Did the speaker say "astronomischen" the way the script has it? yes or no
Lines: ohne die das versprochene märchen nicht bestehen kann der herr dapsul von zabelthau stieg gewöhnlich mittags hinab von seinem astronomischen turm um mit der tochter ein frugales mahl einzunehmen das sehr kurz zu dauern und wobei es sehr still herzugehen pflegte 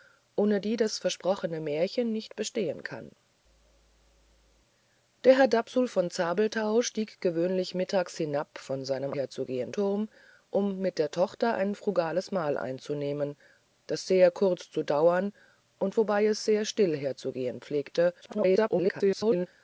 no